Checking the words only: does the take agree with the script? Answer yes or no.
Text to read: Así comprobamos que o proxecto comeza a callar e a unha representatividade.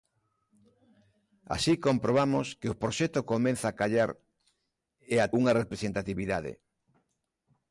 yes